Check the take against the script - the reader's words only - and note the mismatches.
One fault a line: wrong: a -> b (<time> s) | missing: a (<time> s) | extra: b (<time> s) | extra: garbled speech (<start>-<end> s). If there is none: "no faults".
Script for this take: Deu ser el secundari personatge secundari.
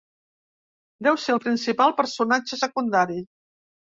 wrong: secundari -> principal (1.5 s)